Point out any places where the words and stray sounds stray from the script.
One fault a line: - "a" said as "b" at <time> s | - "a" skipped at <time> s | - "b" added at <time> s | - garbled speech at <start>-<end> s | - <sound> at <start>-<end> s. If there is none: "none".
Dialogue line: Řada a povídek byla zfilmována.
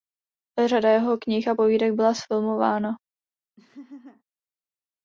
- "jeho knih" added at 0.9 s
- laugh at 3.6-4.2 s